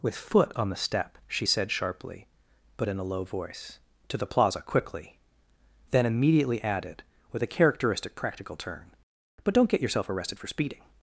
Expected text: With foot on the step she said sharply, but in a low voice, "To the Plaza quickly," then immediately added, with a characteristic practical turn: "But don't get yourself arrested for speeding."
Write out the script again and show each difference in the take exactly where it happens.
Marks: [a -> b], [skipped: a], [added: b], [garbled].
With foot on the step she said sharply, but in a low voice, "To the Plaza quickly," then immediately added, with a characteristic practical turn: "But don't get yourself arrested for speeding."